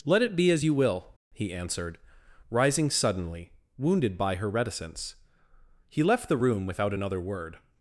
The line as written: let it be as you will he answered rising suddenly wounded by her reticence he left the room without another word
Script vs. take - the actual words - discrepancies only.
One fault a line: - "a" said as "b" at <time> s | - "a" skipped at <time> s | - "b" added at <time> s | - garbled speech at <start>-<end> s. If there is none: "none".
none